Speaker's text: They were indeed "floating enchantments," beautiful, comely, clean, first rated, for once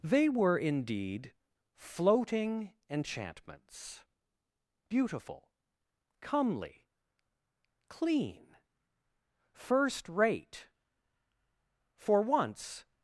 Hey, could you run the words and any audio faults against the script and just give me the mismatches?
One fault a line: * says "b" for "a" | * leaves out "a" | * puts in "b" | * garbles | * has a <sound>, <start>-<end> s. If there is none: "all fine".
* says "rate" for "rated"